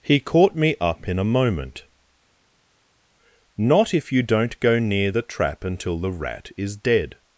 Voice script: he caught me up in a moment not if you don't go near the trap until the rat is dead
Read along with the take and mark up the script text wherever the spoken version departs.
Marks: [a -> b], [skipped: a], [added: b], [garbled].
he caught me up in a moment not if you don't go near the trap until the rat is dead